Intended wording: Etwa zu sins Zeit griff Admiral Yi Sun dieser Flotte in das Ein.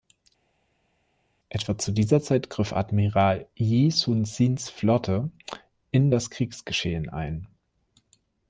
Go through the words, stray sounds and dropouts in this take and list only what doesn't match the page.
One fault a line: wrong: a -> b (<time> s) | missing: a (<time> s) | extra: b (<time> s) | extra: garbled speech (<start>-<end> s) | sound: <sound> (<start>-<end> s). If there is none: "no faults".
wrong: sins -> dieser (1.9 s)
wrong: dieser -> sins (4.2 s)
extra: Kriegsgeschehen (6.3 s)